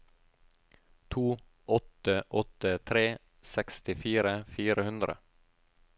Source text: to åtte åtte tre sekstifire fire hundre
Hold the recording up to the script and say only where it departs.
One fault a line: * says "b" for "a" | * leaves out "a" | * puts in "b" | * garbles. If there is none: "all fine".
all fine